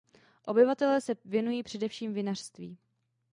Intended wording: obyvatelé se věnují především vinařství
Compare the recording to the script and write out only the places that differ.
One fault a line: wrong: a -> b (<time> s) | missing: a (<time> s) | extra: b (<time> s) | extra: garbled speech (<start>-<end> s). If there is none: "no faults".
no faults